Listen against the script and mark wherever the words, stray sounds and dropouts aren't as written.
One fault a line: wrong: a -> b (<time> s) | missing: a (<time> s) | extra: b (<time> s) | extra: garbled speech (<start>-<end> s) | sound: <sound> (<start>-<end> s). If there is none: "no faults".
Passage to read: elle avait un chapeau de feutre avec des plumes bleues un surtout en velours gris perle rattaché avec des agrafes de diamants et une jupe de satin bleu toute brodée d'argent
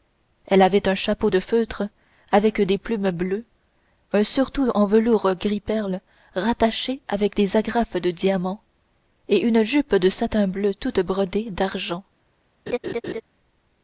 sound: laugh (12.7-13.2 s)